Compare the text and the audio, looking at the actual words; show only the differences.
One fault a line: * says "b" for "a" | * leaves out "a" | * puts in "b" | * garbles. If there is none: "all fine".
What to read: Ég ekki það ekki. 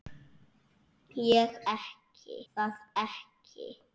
all fine